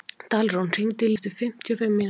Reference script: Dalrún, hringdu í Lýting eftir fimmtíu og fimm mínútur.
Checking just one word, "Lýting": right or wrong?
wrong